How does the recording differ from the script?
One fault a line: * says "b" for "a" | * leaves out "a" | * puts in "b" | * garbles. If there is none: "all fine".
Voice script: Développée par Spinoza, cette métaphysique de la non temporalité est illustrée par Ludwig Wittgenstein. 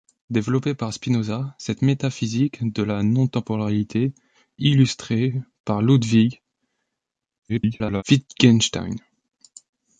* leaves out "est"
* garbles